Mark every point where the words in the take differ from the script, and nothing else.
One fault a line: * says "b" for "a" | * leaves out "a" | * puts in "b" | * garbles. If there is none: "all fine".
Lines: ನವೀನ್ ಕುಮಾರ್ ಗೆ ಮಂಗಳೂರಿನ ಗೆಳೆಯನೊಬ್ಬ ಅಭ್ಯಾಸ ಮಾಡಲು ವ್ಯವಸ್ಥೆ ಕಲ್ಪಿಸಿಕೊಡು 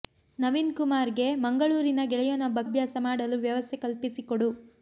all fine